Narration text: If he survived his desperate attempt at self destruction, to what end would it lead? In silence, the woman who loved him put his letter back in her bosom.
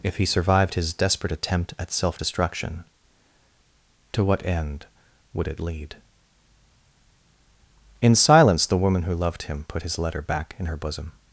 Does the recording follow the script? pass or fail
pass